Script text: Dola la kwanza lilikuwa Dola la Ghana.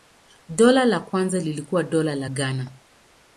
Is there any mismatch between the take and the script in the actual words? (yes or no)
no